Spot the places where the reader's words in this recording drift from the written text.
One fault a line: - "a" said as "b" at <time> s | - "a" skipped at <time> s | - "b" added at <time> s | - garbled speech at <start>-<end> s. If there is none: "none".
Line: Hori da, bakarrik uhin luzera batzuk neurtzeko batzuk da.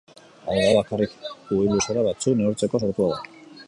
- "Hori" said as "Hau" at 0.5 s
- "batzuk" said as "sortua" at 2.8 s